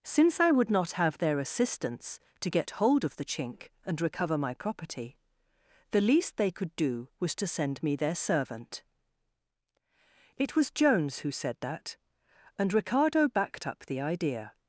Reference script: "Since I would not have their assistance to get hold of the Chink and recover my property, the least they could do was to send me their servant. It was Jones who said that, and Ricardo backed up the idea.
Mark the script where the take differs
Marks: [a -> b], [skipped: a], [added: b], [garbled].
"Since I would not have their assistance to get hold of the Chink and recover my property, the least they could do was to send me their servant. It was Jones who said that, and Ricardo backed up the idea.